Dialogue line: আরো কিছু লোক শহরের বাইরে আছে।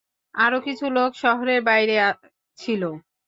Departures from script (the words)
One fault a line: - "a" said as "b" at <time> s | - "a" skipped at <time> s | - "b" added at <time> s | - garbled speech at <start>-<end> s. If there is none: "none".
- "আছে" said as "ছিল" at 2.6 s